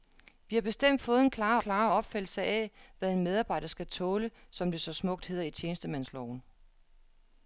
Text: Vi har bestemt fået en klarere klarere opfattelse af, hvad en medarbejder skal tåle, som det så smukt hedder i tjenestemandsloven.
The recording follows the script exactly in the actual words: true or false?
true